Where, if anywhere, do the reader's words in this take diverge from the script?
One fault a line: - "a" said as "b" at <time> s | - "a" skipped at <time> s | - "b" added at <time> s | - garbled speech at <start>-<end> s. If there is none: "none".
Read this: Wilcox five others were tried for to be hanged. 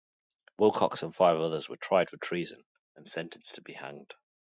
- "and" added at 1.0 s
- "treason and sentenced" added at 2.2 s